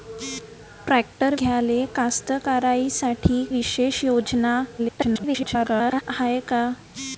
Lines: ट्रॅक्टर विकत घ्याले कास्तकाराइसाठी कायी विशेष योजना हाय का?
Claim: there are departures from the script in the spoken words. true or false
true